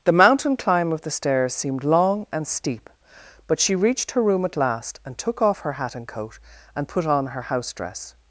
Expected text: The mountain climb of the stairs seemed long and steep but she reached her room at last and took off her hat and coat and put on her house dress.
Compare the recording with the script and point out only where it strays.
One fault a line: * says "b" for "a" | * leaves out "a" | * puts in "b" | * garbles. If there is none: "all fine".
all fine